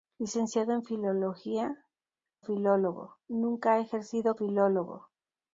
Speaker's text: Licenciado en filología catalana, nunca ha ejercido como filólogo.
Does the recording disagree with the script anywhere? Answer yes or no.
yes